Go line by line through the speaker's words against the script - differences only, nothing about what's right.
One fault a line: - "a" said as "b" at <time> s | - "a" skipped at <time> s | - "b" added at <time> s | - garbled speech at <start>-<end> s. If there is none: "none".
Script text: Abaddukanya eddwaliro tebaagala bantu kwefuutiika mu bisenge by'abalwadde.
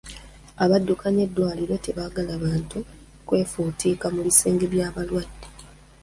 none